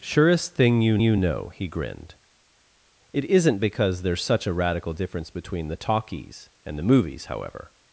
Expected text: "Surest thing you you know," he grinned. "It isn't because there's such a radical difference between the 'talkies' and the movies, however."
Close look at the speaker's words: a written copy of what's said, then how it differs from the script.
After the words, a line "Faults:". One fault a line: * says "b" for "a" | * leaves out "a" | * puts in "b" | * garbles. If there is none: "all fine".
"Surest thing you you know," he grinned. "It isn't because there's such a radical difference between the 'talkies' and the movies, however."
Faults:
all fine